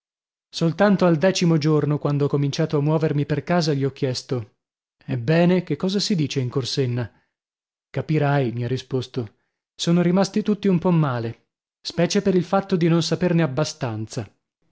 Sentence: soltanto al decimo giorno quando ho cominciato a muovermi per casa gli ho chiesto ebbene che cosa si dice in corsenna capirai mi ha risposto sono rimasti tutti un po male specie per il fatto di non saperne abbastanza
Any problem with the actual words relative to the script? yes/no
no